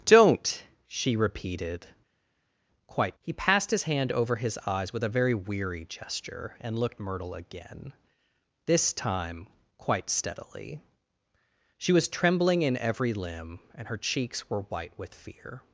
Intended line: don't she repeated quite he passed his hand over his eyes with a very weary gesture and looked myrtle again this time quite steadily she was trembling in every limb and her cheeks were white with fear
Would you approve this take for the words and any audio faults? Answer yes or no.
yes